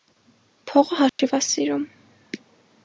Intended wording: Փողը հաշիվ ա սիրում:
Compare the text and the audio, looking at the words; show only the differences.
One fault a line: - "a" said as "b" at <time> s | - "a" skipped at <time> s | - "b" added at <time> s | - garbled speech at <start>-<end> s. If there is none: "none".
none